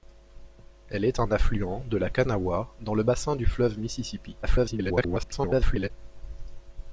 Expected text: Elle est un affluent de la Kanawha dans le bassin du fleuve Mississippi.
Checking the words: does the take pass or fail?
fail